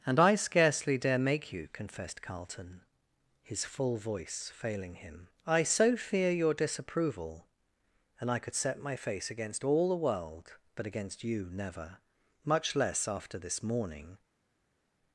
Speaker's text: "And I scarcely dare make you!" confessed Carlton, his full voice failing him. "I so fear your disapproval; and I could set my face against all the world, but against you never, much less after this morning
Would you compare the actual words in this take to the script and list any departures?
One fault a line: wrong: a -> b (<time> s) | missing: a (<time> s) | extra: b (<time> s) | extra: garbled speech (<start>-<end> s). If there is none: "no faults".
no faults